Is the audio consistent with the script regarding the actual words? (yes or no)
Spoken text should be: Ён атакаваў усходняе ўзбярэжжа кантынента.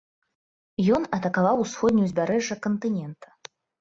yes